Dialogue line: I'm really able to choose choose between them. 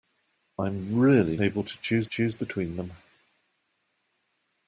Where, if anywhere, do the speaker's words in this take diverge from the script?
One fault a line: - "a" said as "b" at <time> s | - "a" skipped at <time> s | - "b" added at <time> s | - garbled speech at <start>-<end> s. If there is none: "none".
none